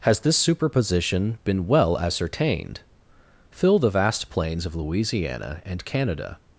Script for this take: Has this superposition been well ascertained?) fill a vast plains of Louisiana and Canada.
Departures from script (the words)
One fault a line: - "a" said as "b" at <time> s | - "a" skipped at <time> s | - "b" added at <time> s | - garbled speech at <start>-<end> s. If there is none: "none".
- "a" said as "the" at 3.8 s